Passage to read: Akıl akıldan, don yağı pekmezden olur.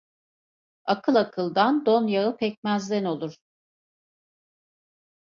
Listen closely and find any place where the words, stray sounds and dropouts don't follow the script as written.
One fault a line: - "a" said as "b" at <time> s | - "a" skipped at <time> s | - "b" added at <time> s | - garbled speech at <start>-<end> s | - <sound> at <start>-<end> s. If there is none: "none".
none